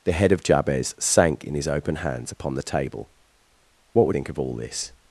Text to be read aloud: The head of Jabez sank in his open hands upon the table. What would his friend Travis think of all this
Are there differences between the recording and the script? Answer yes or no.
yes